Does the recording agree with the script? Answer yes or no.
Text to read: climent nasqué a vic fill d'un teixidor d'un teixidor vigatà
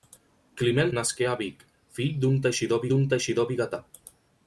yes